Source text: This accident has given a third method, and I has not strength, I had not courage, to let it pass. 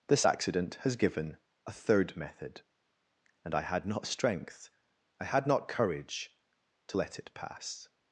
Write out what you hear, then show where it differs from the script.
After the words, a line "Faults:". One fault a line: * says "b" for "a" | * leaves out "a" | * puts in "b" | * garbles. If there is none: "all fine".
This accident has given a third method, and I had not strength, I had not courage, to let it pass.
Faults:
* says "had" for "has"